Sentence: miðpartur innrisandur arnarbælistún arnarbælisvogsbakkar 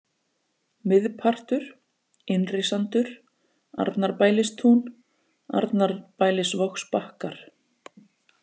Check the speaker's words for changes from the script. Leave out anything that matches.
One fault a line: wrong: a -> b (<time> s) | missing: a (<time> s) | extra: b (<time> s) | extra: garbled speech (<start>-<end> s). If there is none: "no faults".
no faults